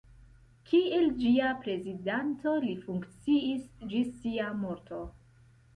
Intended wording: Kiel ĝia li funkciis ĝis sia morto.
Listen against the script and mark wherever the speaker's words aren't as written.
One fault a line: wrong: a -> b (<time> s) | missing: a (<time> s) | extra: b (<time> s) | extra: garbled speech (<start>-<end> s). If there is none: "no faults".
extra: prezidanto (1.6 s)